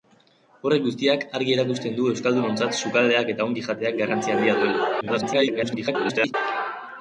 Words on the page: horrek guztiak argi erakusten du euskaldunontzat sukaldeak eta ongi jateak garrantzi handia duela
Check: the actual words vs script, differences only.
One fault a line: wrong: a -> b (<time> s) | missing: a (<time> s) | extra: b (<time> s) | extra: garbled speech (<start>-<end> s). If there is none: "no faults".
extra: garbled speech (5.0-6.3 s)